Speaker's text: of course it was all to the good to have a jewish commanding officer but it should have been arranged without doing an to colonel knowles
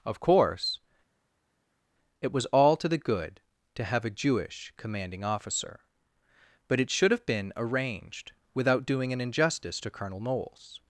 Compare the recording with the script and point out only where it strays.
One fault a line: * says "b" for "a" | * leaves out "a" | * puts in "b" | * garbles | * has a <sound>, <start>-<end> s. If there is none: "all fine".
* puts in "injustice"